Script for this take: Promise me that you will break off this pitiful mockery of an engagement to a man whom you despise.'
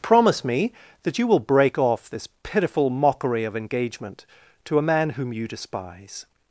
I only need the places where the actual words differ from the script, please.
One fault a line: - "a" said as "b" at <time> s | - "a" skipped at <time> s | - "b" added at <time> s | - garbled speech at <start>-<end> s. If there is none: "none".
- "an" skipped at 3.5 s